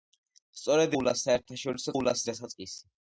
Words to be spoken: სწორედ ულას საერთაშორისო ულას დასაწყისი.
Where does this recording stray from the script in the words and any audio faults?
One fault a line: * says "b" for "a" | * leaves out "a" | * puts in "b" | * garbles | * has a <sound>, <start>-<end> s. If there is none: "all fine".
all fine